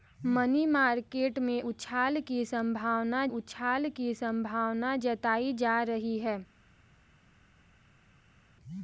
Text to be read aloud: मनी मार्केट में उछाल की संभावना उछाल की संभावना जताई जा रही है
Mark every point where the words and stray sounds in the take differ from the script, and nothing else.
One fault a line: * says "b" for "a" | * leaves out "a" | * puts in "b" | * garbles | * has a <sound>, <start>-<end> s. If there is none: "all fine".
all fine